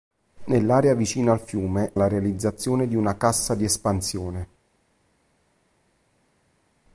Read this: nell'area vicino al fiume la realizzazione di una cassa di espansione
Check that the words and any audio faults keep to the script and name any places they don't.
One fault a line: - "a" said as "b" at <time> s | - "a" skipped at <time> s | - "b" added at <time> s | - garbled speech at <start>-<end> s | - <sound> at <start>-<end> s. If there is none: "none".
none